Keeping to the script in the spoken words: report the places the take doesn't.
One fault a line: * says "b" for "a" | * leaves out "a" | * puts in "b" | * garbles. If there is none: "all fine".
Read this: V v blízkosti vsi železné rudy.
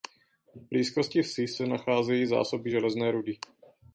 * leaves out "v"
* puts in "se nacházejí zásoby"